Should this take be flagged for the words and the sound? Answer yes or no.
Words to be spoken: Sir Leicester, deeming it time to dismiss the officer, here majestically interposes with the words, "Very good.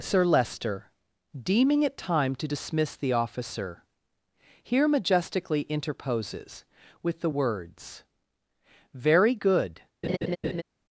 yes